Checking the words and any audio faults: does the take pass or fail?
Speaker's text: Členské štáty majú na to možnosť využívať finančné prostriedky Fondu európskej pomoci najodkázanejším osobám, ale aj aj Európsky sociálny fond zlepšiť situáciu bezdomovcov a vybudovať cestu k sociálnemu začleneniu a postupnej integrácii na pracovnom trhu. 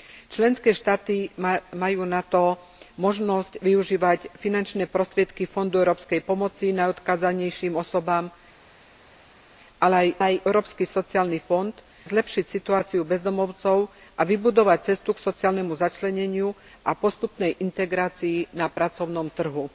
pass